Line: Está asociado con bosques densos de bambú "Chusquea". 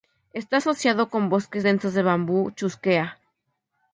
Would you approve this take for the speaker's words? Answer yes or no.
yes